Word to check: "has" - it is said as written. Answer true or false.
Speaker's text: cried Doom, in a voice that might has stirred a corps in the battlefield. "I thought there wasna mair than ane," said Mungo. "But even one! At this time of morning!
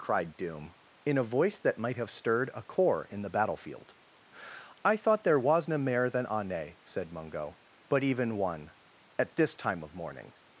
false